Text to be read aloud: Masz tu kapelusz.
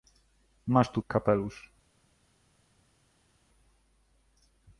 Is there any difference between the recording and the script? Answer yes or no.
no